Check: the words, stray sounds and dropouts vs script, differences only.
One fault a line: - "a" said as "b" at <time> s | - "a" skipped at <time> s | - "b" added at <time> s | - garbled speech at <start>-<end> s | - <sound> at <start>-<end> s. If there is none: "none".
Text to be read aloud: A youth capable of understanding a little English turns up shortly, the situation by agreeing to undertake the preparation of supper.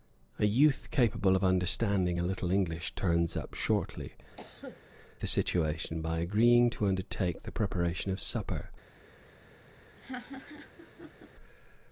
- cough at 4.4-4.8 s
- laugh at 10.0-11.3 s